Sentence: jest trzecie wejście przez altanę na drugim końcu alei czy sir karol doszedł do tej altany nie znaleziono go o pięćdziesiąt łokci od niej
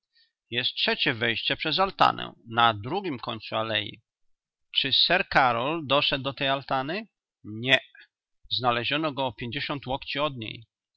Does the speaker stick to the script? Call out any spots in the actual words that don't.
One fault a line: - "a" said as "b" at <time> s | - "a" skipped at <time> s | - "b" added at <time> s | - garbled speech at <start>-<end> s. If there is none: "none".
none